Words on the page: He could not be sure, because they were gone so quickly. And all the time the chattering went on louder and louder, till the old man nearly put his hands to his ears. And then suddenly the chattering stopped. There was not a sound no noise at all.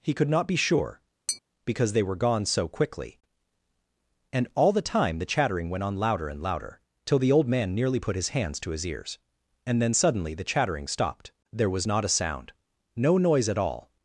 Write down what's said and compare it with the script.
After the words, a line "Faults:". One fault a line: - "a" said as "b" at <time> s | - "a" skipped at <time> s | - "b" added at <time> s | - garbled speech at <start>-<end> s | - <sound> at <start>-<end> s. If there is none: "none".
He could not be sure, because they were gone so quickly. And all the time the chattering went on louder and louder, till the old man nearly put his hands to his ears. And then suddenly the chattering stopped. There was not a sound no noise at all.
Faults:
- tap at 1.3-1.4 s